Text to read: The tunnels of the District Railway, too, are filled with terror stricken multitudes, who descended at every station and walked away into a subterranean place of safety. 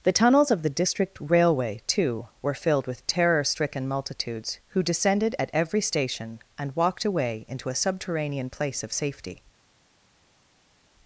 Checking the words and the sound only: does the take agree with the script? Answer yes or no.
no